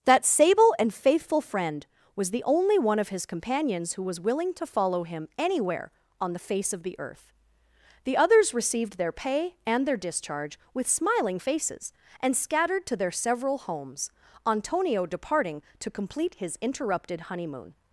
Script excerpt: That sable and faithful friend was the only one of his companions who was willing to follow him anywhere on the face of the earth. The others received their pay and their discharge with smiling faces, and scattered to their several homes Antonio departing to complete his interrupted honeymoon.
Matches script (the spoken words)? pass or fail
pass